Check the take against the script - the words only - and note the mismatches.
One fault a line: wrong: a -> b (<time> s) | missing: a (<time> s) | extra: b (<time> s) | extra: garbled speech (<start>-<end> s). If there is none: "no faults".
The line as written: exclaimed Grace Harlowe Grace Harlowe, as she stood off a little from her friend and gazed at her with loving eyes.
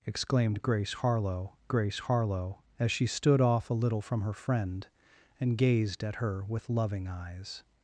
no faults